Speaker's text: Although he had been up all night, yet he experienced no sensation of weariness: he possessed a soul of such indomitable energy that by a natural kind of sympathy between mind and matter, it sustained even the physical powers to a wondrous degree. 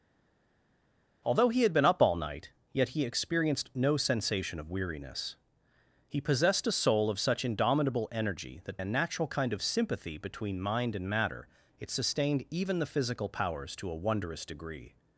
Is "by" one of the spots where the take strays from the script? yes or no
yes